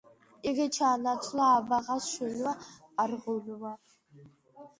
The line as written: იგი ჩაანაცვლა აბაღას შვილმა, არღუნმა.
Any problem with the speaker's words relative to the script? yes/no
no